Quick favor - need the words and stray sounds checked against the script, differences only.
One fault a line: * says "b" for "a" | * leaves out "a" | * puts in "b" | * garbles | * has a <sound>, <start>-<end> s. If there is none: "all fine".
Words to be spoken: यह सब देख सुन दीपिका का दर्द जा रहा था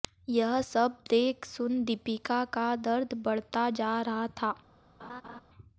* puts in "बढ़ता"
* has a laugh, 5.0-5.4 s